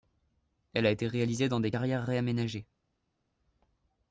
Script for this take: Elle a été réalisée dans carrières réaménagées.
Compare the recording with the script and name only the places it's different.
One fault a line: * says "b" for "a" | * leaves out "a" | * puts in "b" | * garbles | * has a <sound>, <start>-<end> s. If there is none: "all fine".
* puts in "des"